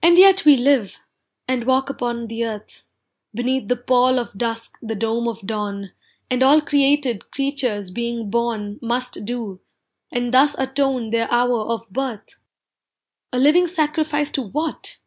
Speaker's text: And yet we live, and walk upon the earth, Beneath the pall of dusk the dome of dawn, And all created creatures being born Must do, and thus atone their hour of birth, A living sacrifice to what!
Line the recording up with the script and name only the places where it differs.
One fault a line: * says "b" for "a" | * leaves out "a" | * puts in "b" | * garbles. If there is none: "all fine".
all fine